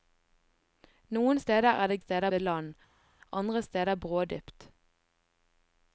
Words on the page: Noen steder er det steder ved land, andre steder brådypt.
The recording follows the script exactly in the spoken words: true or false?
true